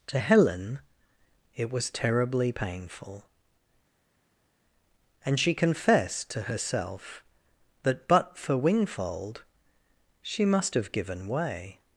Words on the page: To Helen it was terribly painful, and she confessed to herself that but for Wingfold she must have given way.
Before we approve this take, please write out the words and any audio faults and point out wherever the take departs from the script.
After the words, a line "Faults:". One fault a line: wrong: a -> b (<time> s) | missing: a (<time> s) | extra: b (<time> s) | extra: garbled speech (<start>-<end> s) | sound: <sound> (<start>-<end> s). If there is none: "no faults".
To Helen it was terribly painful, and she confessed to herself that but for Wingfold she must have given way.
Faults:
no faults